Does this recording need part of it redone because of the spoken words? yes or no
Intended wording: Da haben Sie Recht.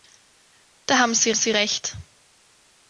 yes